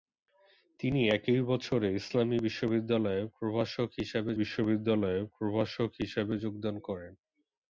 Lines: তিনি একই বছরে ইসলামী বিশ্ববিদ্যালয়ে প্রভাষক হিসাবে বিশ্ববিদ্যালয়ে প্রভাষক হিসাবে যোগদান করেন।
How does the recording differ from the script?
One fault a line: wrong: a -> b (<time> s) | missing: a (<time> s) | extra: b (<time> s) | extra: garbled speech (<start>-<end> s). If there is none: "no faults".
no faults